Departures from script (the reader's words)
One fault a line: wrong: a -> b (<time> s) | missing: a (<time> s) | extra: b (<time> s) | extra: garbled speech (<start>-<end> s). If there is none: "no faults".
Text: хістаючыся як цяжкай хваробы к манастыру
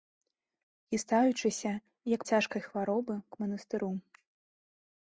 no faults